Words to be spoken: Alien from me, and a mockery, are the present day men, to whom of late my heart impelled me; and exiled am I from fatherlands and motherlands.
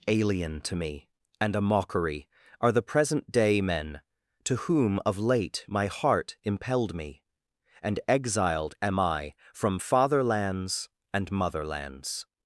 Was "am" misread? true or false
false